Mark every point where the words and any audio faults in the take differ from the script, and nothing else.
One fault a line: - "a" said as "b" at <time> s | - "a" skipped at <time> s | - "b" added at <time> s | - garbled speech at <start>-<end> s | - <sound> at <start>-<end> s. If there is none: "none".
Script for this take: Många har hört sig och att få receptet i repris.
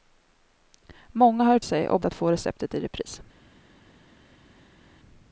none